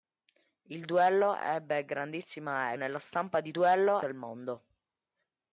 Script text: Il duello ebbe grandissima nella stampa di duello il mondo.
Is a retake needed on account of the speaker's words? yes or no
no